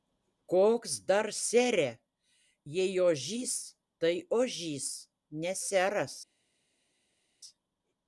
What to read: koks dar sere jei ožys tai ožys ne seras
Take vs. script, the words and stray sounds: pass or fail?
pass